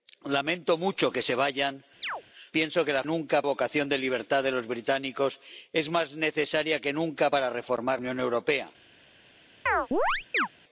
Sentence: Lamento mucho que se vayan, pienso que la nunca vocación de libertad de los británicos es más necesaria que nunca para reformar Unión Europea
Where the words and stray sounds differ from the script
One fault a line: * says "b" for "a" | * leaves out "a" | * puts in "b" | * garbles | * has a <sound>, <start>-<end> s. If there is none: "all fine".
* has a chirp, 2.0-2.2 s
* has a chirp, 9.7-10.5 s